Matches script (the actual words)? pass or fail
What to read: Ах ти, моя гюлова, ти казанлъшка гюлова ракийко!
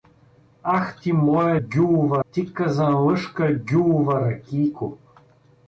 pass